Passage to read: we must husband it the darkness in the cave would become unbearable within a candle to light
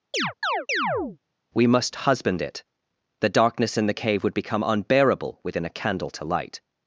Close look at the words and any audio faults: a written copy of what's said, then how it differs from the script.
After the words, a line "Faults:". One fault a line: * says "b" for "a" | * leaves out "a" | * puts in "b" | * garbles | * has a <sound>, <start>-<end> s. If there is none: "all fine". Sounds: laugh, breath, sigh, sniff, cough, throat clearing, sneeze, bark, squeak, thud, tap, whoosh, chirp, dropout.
we must husband it the darkness in the cave would become unbearable within a candle to light
Faults:
* has a chirp, 0.1-1.2 s